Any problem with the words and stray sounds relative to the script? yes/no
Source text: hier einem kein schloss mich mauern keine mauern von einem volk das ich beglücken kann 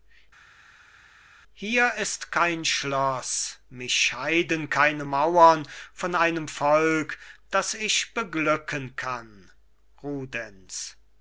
yes